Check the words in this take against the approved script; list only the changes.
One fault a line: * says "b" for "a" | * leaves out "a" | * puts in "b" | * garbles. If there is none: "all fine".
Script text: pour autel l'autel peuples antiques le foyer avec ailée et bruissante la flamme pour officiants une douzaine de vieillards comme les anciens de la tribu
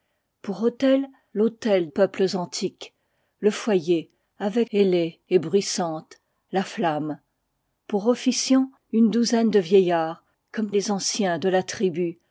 all fine